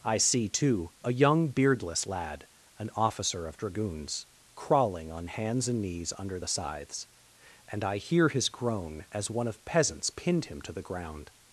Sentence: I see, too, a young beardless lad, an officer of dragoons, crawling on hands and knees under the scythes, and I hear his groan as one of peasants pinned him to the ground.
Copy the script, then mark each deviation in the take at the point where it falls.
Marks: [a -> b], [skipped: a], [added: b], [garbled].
I see, too, a young beardless lad, an officer of dragoons, crawling on hands and knees under the scythes, and I hear his groan as one of peasants pinned him to the ground.